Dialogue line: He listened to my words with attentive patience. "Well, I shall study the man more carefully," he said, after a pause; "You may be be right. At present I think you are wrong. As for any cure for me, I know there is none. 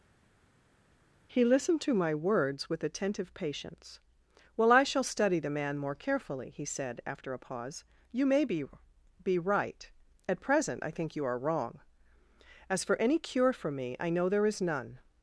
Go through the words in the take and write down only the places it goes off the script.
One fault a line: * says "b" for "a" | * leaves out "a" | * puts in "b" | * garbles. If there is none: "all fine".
all fine